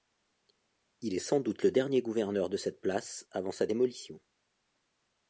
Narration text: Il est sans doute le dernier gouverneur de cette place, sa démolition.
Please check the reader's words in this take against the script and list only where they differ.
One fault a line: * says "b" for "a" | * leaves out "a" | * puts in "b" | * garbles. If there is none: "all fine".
* puts in "avant"